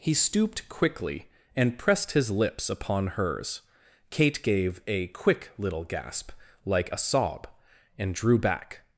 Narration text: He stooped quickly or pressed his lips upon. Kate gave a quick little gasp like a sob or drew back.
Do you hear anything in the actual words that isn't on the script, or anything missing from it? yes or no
yes